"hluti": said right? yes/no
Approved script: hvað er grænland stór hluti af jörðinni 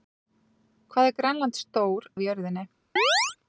no